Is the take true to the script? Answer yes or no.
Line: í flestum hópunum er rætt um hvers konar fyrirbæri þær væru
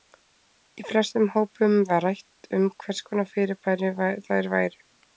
no